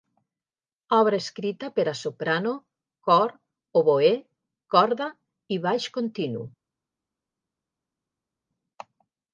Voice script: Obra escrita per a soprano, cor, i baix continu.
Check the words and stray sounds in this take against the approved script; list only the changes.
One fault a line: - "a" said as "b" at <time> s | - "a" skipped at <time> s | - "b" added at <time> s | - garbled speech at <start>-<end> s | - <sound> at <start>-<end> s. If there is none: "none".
- "oboè corda" added at 3.8 s